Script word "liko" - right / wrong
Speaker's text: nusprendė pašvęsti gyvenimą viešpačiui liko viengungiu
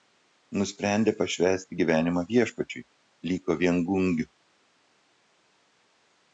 right